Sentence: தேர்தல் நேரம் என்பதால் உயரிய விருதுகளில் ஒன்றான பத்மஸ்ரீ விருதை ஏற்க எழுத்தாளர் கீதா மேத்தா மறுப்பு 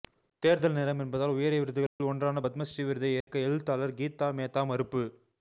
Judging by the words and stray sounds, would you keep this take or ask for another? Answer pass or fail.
fail